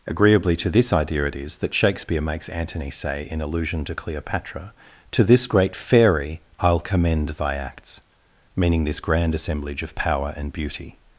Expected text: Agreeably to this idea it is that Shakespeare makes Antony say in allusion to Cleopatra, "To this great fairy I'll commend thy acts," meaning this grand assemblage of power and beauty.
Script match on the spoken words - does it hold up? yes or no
yes